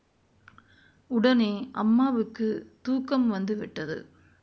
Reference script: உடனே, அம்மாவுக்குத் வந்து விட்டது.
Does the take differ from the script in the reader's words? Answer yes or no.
yes